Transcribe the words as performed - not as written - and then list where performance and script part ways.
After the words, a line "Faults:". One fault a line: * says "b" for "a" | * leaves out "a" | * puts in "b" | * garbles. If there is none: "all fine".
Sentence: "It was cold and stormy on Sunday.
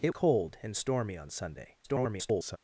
"It cold and stormy on Sunday. [garbled]
Faults:
* leaves out "was"
* garbles